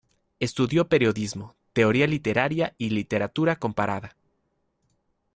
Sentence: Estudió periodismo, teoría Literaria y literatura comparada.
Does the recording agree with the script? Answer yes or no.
yes